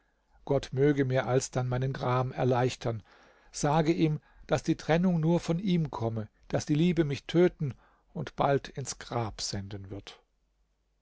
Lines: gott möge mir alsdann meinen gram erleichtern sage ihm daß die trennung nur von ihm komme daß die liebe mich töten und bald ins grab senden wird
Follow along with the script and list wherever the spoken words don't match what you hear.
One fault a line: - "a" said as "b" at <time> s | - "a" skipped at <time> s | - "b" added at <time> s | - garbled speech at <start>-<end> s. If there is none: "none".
none